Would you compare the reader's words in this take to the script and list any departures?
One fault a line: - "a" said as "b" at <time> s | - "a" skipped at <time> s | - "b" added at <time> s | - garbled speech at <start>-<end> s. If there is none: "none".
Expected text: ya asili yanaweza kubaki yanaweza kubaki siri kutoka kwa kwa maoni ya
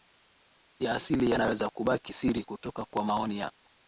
- "yanaweza kubaki" skipped at 2.1 s
- "kwa" skipped at 3.0 s